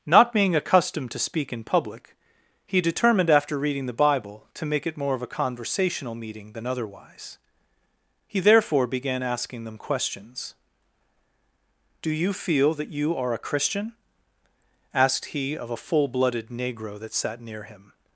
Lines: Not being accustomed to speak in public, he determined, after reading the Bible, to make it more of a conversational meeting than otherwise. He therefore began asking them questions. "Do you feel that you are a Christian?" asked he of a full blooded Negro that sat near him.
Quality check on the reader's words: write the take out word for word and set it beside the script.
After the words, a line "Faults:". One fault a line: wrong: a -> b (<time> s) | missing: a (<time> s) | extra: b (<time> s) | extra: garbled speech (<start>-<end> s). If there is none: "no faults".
Not being accustomed to speak in public, he determined, after reading the Bible, to make it more of a conversational meeting than otherwise. He therefore began asking them questions. "Do you feel that you are a Christian?" asked he of a full blooded Negro that sat near him.
Faults:
no faults